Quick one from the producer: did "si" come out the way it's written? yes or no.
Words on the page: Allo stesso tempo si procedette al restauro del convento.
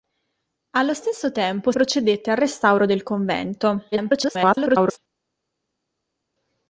no